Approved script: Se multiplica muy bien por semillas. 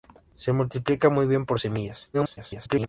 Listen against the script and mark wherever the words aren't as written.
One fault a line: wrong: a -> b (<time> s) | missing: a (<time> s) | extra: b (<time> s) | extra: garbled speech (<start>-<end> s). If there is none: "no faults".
extra: garbled speech (2.1-2.9 s)